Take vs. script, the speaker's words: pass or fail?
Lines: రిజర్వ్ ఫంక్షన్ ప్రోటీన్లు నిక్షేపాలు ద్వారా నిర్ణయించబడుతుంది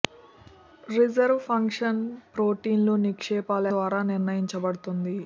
pass